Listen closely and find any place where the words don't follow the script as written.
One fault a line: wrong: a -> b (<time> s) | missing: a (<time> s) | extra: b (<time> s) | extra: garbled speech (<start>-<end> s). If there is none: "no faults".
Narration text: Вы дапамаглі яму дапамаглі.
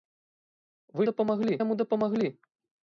no faults